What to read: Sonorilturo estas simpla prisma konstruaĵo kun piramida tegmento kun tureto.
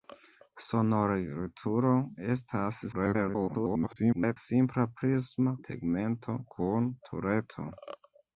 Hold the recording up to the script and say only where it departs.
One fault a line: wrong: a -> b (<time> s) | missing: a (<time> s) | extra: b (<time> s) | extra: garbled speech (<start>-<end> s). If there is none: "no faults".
extra: garbled speech (2.9-4.4 s)
missing: konstruaĵo kun piramida (5.5 s)